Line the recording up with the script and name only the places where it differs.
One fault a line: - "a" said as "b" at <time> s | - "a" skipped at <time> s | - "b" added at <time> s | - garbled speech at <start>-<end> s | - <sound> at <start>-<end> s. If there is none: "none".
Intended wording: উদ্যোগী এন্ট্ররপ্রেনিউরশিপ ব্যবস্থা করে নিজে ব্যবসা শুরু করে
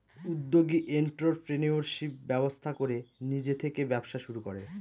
- "থেকে" added at 3.5 s